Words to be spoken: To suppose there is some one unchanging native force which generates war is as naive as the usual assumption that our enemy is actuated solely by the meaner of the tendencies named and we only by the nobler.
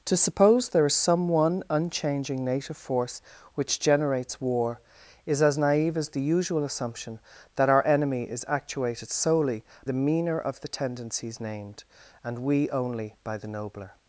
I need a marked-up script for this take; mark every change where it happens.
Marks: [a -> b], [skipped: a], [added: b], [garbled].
To suppose there is some one unchanging native force which generates war is as naive as the usual assumption that our enemy is actuated solely [skipped: by] the meaner of the tendencies named and we only by the nobler.